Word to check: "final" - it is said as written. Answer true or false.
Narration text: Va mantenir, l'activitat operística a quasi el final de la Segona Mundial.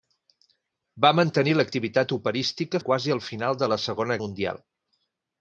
true